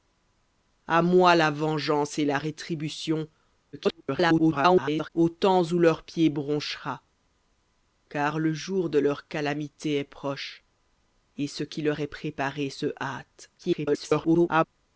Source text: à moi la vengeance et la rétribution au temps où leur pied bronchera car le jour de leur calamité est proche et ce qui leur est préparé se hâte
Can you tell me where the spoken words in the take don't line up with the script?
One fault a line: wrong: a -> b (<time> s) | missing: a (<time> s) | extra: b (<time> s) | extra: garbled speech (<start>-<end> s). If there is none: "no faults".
extra: garbled speech (3.7-5.1 s)
extra: garbled speech (13.6-14.6 s)